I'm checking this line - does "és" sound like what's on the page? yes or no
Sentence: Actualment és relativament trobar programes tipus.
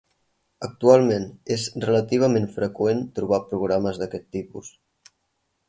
yes